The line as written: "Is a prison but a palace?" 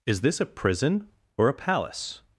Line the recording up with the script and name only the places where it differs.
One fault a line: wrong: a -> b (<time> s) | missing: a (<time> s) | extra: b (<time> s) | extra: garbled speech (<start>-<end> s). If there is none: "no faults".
extra: this (0.2 s)
wrong: but -> or (1.4 s)